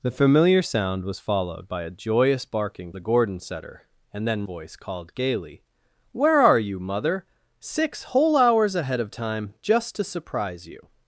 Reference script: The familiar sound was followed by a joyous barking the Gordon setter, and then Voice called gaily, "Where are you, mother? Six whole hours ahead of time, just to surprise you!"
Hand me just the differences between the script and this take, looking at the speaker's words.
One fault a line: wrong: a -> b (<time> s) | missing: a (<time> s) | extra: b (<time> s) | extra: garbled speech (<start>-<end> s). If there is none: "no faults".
no faults